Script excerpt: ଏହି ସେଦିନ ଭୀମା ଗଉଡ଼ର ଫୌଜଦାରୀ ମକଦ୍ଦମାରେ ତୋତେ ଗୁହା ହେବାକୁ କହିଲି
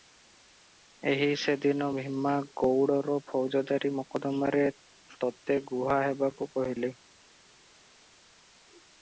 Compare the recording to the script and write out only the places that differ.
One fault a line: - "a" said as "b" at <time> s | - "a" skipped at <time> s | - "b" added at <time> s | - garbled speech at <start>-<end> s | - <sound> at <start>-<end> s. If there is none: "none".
none